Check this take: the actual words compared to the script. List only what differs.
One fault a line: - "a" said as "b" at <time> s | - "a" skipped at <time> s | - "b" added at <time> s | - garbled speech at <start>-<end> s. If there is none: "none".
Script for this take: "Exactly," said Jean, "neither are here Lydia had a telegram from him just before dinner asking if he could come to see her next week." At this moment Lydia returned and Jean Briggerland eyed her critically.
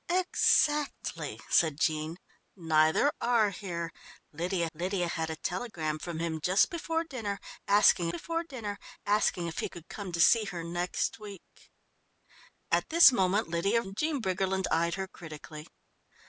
- "Lydia" added at 4.7 s
- "before dinner asking" added at 8.1 s
- "returned" skipped at 13.8 s